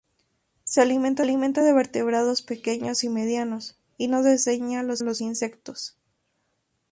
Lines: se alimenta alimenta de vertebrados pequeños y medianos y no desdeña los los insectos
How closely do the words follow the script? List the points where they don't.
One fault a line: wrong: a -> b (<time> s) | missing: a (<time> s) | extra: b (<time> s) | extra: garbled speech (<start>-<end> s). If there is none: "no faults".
no faults